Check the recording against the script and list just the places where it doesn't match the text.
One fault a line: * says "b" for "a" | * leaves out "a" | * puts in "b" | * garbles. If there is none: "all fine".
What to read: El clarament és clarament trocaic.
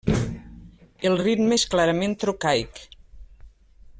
* says "ritme" for "clarament"